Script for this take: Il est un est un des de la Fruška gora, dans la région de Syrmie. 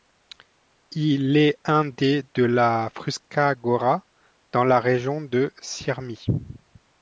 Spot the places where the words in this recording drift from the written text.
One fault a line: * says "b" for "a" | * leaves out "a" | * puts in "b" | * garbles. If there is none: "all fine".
* leaves out "est un"